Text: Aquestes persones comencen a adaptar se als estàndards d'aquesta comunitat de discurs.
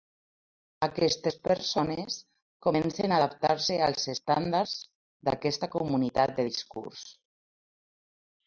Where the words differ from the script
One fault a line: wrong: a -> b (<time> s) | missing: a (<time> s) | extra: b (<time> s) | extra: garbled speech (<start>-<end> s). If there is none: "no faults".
no faults